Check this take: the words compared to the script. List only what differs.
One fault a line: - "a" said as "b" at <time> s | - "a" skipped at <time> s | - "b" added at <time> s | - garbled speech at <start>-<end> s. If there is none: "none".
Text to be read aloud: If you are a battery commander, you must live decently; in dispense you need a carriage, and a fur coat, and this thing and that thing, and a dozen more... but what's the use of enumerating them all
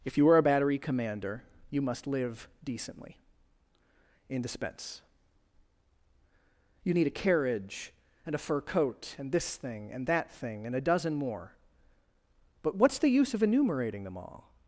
none